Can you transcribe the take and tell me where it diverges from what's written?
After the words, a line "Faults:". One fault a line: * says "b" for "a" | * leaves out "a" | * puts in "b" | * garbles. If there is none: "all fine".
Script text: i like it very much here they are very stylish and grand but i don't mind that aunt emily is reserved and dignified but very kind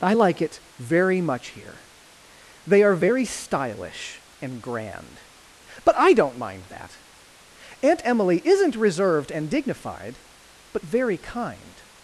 i like it very much here they are very stylish and grand but i don't mind that aunt emily isn't reserved and dignified but very kind
Faults:
* says "isn't" for "is"